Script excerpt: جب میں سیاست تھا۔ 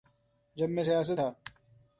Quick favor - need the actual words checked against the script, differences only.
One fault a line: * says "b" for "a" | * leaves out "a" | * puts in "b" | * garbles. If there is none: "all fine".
all fine